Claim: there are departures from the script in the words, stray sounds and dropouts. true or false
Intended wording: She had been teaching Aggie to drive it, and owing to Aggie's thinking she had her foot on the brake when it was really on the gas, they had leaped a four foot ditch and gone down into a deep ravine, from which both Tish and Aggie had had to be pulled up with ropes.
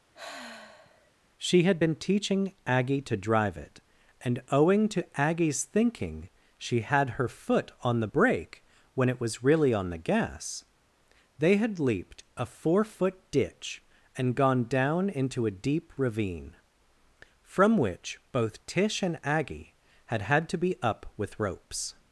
true